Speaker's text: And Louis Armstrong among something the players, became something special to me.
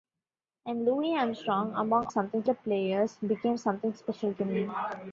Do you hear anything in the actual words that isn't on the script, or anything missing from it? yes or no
no